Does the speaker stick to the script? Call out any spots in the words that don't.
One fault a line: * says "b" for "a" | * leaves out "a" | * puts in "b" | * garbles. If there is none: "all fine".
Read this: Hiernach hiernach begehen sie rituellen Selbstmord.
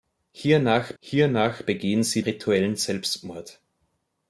all fine